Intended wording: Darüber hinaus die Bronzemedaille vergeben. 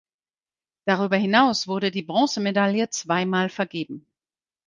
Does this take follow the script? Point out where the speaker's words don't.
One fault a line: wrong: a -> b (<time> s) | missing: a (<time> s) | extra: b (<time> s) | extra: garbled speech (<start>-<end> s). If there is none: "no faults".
extra: wurde (1.7 s)
extra: zweimal (2.9 s)